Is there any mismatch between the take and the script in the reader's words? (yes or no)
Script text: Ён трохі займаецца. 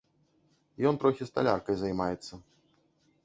yes